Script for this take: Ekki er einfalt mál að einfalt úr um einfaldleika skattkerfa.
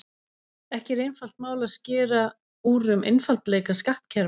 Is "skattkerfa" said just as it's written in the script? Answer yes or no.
yes